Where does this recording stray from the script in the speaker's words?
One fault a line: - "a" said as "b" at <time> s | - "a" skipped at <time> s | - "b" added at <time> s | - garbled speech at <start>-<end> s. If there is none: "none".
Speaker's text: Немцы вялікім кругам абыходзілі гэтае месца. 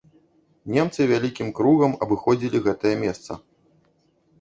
none